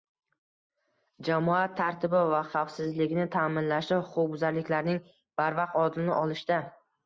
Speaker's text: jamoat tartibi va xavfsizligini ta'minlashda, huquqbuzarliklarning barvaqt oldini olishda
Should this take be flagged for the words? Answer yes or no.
no